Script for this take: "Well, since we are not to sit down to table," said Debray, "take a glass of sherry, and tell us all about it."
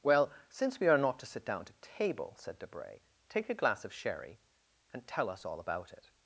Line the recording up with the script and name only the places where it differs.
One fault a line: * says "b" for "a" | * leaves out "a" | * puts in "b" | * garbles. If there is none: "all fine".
all fine